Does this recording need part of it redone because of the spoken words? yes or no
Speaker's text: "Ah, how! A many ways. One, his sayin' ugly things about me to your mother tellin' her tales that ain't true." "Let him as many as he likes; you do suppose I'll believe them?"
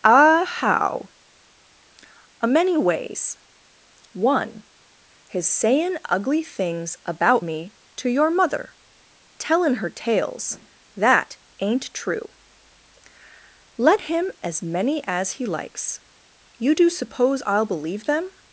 no